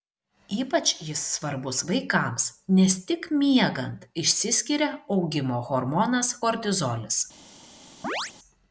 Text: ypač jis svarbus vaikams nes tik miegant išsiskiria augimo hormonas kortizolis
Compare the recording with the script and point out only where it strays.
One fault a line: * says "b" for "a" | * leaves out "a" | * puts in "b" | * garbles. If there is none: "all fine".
all fine